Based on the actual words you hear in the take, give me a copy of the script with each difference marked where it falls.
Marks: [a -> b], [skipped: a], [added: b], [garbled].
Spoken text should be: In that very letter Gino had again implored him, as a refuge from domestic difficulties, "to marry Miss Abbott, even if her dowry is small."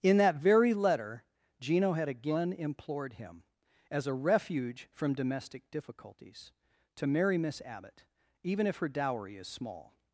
In that very letter Gino had again implored him, as a refuge from domestic difficulties, "to marry Miss Abbott, even if her dowry is small."